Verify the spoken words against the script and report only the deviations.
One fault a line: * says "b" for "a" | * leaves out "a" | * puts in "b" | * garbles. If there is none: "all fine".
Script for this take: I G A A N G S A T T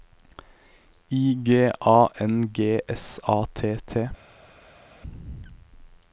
* leaves out "A"